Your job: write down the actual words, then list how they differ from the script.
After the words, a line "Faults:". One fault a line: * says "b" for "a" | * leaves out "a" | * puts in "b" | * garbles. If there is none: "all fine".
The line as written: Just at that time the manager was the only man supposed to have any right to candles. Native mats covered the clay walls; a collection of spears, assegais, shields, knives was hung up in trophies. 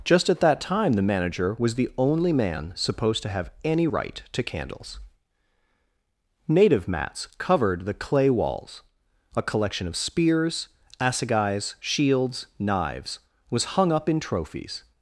Just at that time the manager was the only man supposed to have any right to candles. Native mats covered the clay walls; a collection of spears, assegais, shields, knives was hung up in trophies.
Faults:
all fine